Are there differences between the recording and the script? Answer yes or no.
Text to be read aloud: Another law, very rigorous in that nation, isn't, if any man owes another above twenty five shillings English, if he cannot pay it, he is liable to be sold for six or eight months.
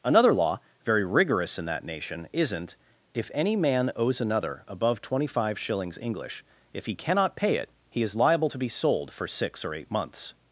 no